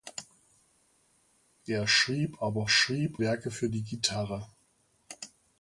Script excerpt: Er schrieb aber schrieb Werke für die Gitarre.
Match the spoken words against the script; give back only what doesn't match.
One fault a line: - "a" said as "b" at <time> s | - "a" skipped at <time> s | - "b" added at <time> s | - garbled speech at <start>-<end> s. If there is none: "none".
none